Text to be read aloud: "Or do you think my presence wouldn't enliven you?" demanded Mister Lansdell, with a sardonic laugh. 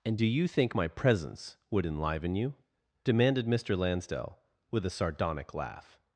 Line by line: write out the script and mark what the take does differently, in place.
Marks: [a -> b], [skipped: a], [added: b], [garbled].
["Or -> And] do you think my presence [wouldn't -> would] enliven you?" demanded Mister Lansdell, with a sardonic laugh.